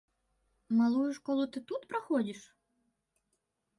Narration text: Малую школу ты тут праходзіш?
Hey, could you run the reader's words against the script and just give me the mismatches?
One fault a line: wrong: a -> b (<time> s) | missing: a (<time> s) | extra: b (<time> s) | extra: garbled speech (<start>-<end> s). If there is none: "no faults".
no faults